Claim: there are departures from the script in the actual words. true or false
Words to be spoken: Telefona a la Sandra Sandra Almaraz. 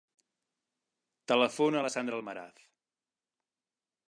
true